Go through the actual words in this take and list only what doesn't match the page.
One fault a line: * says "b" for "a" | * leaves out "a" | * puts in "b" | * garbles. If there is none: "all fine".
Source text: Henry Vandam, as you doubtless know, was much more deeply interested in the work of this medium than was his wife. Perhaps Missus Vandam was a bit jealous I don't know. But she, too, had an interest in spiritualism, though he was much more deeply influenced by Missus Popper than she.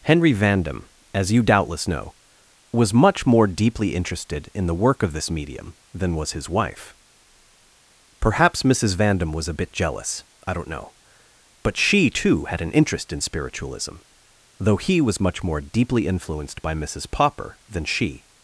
all fine